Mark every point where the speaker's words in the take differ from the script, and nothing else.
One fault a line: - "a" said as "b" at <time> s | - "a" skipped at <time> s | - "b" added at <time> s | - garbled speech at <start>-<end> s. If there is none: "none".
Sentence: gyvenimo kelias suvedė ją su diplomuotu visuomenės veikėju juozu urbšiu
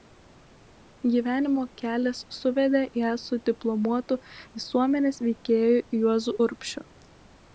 none